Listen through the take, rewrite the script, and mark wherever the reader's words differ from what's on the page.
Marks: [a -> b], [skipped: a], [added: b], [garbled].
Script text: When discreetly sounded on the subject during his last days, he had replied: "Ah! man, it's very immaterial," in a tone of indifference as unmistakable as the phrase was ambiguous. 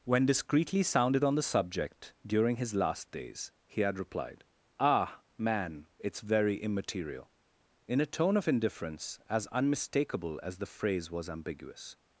When discreetly sounded on the subject during his last days, he had replied: "Ah! man, it's very immaterial," in a tone of indifference as unmistakable as the phrase was ambiguous.